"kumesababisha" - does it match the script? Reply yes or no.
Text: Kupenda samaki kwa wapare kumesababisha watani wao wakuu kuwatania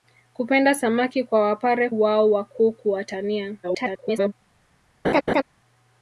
no